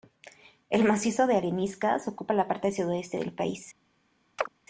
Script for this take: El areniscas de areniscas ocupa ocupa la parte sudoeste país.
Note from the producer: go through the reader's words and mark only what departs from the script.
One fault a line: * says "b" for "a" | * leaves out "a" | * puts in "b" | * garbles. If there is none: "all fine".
* says "macizo" for "areniscas"
* leaves out "ocupa"
* puts in "del"